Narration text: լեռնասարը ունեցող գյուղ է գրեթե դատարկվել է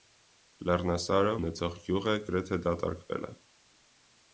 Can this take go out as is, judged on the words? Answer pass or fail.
pass